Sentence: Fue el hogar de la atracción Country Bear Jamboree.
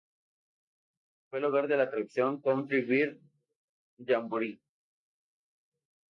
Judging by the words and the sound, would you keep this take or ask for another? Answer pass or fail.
pass